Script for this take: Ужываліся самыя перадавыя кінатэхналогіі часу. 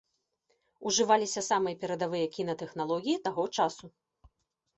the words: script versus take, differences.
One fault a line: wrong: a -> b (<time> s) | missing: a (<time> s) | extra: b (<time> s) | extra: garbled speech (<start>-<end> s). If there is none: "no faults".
extra: таго (3.3 s)